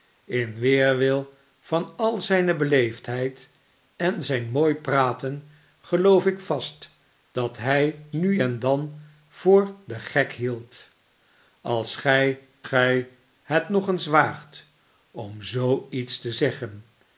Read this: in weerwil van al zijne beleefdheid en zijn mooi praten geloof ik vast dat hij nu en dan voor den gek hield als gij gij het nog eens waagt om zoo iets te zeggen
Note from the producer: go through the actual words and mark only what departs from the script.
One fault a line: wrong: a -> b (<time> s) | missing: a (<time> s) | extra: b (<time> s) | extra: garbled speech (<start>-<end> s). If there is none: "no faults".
no faults